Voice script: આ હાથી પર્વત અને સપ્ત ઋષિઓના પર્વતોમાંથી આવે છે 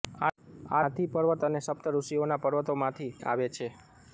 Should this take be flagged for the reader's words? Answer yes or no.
no